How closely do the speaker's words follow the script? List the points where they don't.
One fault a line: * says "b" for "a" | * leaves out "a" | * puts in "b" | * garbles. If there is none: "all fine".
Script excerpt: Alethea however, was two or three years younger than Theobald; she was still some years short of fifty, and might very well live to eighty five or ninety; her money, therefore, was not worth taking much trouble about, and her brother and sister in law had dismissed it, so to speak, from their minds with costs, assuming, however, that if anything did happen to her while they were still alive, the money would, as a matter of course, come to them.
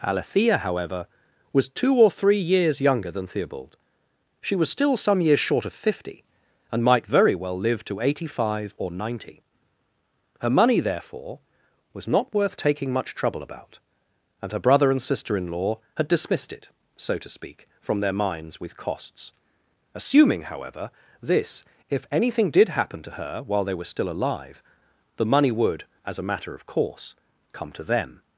* says "this" for "that"